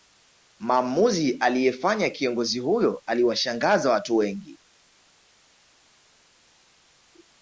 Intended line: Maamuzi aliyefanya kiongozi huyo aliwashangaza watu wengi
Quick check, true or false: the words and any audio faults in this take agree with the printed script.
true